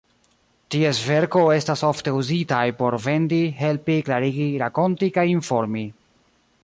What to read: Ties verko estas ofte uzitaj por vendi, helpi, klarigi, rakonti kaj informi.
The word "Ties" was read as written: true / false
true